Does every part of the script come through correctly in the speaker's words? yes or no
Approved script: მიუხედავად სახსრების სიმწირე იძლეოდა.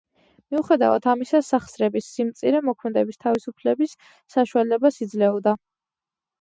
no